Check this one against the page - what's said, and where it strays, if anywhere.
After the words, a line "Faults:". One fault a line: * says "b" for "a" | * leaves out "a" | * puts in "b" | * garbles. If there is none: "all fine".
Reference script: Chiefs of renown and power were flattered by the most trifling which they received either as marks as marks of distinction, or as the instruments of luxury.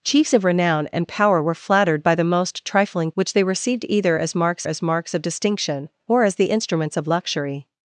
Chiefs of renown and power were flattered by the most trifling which they received either as marks as marks of distinction, or as the instruments of luxury.
Faults:
all fine